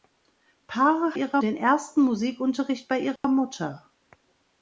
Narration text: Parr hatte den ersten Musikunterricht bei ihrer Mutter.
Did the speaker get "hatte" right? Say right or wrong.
wrong